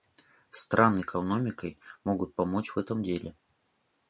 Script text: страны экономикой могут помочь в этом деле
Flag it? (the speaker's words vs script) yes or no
no